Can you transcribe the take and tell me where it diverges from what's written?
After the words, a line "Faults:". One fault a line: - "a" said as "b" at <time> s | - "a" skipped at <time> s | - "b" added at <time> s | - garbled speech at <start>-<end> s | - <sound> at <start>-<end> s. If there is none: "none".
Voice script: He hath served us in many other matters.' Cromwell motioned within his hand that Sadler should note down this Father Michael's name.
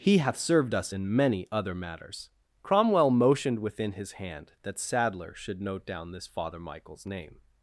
He hath served us in many other matters.' Cromwell motioned within his hand that Sadler should note down this Father Michael's name.
Faults:
none